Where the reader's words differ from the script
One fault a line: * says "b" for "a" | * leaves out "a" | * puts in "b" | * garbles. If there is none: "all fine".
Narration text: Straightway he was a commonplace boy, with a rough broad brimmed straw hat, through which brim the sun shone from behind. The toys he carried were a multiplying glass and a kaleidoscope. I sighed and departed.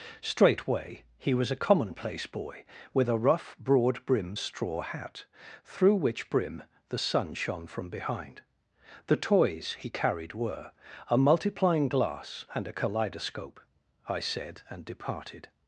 * says "said" for "sighed"